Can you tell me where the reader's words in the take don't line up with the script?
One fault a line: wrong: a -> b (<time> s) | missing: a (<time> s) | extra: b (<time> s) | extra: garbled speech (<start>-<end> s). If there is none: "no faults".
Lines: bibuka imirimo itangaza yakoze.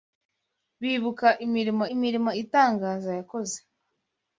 extra: imirimo (1.9 s)